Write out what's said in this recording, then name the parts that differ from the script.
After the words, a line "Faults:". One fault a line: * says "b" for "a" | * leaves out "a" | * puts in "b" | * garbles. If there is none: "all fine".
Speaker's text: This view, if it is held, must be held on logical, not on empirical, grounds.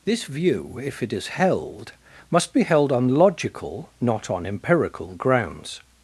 This view, if it is held, must be held on logical, not on empirical, grounds.
Faults:
all fine